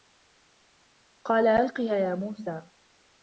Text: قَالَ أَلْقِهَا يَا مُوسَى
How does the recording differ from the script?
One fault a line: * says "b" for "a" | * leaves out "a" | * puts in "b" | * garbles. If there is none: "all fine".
all fine